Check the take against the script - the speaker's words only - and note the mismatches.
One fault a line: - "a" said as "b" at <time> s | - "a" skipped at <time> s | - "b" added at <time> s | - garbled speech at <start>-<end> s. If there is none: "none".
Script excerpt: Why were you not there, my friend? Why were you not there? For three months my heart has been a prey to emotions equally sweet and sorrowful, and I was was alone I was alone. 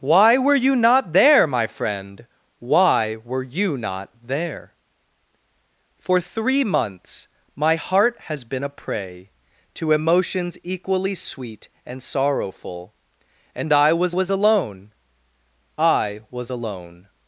none